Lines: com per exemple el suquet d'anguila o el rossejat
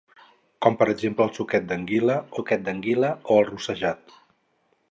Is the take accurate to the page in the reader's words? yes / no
no